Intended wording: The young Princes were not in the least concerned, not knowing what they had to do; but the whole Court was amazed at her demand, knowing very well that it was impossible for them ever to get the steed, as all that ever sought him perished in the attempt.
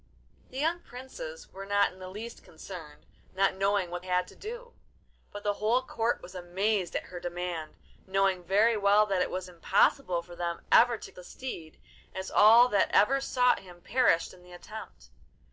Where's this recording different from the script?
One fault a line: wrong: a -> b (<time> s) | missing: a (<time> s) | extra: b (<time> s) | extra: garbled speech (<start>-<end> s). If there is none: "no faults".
missing: they (4.0 s)
missing: get (11.1 s)